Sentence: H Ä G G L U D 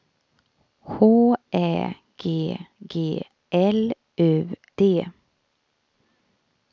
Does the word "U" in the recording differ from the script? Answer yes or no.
no